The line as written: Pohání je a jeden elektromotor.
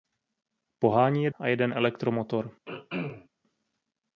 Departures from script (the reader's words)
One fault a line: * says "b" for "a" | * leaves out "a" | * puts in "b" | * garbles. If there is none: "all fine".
all fine